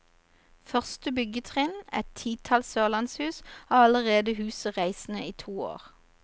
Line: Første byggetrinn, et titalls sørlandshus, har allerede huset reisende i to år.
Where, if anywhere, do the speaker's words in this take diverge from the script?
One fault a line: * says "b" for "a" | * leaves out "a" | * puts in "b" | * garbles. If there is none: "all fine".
all fine